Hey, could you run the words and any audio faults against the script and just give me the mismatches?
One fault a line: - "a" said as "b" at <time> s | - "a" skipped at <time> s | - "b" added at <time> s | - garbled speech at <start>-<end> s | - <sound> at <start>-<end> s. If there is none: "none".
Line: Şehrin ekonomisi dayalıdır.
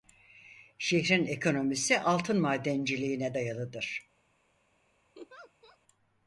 - "altın madenciliğine" added at 2.0 s
- laugh at 5.1-5.8 s